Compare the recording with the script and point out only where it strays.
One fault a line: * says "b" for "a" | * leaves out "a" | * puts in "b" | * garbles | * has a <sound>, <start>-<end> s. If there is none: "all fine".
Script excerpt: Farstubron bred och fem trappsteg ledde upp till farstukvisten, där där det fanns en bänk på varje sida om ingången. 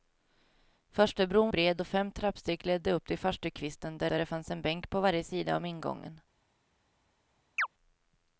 * has a chirp, 7.6-7.7 s